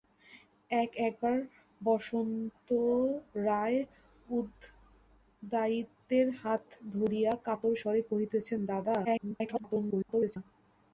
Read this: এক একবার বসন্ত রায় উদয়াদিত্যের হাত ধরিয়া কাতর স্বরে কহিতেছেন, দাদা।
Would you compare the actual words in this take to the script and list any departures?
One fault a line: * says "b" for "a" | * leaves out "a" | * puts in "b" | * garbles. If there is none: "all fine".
* garbles